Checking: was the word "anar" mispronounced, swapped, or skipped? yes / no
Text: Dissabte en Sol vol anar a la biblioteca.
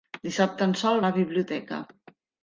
yes